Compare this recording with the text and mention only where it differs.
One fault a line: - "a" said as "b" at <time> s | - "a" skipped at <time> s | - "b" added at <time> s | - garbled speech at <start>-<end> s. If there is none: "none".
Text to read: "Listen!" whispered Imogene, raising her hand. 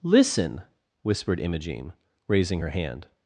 none